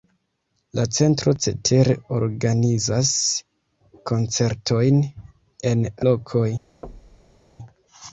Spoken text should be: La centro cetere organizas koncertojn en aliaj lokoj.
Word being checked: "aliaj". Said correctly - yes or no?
no